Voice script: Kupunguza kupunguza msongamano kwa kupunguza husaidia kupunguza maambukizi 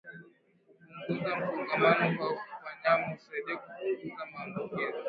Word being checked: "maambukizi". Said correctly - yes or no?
yes